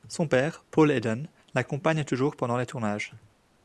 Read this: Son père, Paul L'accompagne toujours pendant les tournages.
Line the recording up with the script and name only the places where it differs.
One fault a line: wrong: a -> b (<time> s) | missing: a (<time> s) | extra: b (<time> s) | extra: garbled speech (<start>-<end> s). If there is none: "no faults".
extra: Eden (0.9 s)